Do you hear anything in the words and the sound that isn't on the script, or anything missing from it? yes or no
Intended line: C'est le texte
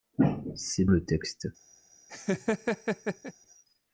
yes